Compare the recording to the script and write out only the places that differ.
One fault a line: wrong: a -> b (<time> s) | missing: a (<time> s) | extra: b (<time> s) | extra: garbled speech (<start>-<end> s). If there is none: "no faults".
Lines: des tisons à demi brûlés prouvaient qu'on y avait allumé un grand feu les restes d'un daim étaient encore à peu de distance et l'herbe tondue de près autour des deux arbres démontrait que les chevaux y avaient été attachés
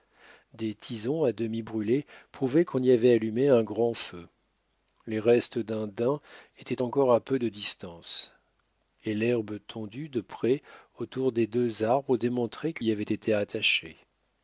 missing: les chevaux (12.8 s)